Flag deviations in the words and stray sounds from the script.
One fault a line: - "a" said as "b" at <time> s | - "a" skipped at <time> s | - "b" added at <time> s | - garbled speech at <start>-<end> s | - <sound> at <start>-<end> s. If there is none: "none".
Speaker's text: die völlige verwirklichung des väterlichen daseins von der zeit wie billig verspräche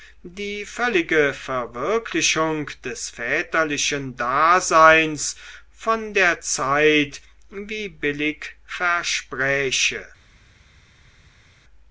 none